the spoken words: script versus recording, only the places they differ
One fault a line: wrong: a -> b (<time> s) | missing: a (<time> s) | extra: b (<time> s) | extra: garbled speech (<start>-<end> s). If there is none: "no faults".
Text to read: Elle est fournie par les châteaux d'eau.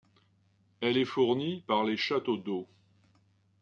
no faults